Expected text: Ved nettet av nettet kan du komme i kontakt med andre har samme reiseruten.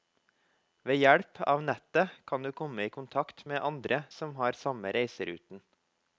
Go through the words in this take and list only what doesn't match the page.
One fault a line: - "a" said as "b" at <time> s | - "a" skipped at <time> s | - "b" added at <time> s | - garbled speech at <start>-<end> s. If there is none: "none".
- "nettet" said as "hjelp" at 1.0 s
- "som" added at 4.2 s